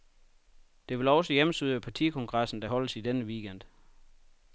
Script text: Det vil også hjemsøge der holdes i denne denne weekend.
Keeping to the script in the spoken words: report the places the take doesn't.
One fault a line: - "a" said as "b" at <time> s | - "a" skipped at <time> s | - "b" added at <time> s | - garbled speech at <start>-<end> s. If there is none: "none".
- "partikongressen" added at 1.8 s
- "denne" skipped at 3.2 s